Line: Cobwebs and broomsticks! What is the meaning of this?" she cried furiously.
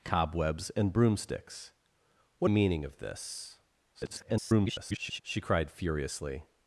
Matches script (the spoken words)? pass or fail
fail